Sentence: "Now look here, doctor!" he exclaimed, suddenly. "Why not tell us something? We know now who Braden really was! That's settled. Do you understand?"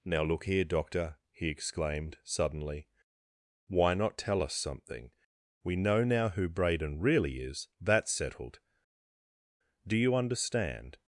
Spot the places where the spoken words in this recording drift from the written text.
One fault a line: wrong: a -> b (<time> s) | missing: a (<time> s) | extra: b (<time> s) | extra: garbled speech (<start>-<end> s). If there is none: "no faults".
wrong: was -> is (7.4 s)